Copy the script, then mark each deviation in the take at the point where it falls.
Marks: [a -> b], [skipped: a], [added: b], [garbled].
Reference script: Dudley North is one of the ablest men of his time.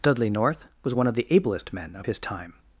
Dudley North [is -> was] one of the ablest men of his time.